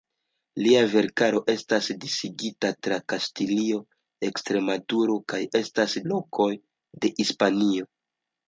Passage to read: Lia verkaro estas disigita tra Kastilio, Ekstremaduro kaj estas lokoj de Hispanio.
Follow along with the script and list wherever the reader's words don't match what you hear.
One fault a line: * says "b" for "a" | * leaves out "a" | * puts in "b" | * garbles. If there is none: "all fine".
all fine